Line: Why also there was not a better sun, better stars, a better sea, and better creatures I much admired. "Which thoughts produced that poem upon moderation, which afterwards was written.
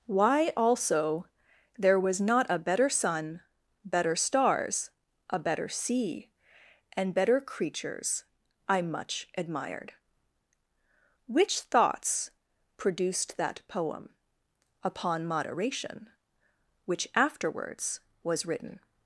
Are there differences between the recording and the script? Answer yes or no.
no